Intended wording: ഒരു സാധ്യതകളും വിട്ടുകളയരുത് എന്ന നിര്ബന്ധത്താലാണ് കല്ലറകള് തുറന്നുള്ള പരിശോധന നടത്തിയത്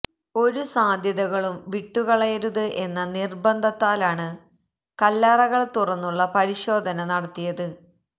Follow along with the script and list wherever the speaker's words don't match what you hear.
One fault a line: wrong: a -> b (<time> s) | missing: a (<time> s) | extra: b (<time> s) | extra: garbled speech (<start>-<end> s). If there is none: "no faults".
no faults